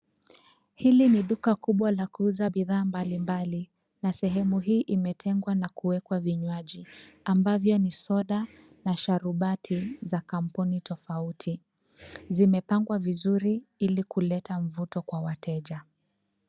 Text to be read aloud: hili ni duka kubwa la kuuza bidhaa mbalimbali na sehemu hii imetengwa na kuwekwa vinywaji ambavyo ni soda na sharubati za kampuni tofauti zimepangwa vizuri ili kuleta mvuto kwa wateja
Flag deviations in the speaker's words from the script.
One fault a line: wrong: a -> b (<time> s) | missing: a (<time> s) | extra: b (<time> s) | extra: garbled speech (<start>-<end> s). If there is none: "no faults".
no faults